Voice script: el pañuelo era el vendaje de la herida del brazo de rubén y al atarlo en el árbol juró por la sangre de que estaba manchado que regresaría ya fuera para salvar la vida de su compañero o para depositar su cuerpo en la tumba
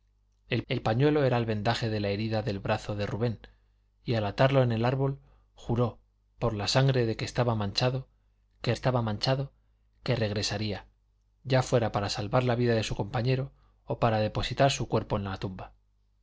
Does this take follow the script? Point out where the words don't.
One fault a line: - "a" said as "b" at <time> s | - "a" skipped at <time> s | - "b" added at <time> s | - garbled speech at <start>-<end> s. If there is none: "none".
- "el" added at 0.7 s
- "estaba manchado que" added at 8.7 s